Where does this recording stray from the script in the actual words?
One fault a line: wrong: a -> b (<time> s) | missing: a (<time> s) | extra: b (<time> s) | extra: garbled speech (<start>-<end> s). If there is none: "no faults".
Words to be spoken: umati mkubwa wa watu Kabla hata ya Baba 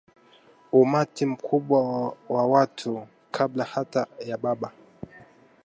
no faults